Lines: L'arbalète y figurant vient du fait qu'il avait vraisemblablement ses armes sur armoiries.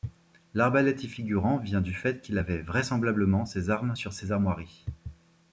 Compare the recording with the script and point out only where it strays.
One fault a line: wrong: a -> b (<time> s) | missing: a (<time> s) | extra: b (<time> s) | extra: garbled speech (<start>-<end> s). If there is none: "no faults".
extra: ses (4.1 s)